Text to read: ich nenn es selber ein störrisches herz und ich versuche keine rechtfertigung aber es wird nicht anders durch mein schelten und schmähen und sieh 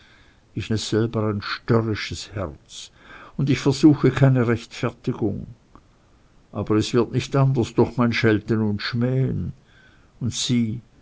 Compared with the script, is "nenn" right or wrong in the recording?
wrong